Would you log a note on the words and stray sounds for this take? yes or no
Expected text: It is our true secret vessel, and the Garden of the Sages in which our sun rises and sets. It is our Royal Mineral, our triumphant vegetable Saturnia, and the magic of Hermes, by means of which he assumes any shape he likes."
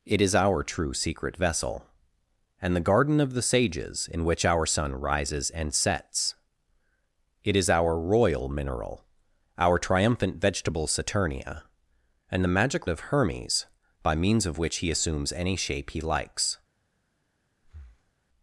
yes